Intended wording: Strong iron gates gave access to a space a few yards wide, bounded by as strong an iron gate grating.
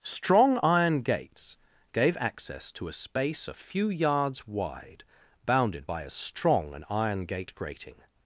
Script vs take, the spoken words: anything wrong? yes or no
no